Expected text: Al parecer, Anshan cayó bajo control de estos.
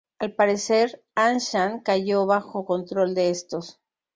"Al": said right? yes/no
yes